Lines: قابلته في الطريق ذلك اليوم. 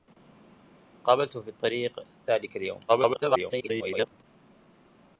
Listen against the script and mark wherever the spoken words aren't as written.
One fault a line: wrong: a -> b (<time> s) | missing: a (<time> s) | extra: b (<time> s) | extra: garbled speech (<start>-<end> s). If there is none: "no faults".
extra: garbled speech (2.9-4.2 s)